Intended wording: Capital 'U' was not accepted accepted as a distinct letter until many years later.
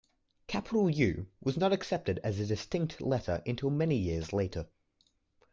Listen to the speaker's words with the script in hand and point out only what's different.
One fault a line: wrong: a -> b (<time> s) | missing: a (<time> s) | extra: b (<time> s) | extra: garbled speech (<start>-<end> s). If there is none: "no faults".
missing: accepted (2.2 s)